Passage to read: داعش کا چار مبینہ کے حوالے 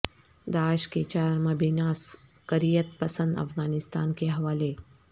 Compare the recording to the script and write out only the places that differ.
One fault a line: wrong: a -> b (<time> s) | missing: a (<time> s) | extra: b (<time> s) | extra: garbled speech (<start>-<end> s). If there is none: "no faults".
wrong: کا -> کے (0.9 s)
extra: عسکریت پسند افغانستان (1.8 s)